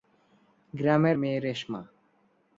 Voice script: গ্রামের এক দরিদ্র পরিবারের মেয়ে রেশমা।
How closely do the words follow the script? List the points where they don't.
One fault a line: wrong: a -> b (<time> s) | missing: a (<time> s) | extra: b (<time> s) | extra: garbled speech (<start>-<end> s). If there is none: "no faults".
missing: এক দরিদ্র পরিবারের (1.2 s)